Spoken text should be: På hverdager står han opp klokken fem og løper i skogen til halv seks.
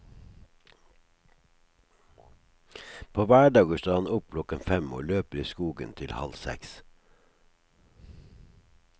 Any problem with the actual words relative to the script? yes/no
no